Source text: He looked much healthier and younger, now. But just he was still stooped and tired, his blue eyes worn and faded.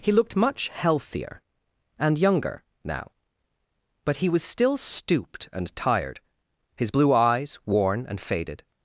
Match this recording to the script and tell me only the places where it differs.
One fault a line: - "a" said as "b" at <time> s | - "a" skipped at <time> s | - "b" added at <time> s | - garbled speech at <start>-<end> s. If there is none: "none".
- "just" skipped at 4.2 s